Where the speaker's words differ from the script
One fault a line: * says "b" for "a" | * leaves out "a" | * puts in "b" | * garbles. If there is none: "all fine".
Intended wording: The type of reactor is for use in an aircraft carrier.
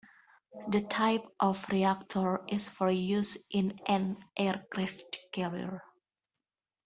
all fine